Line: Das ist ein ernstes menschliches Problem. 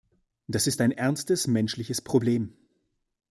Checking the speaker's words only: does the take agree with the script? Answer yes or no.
yes